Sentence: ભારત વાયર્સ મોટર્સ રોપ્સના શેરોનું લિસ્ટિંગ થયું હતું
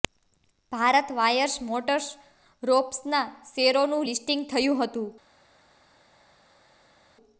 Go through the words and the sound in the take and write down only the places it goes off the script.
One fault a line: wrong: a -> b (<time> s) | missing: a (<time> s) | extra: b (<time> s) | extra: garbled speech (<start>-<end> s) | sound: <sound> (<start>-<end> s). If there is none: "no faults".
no faults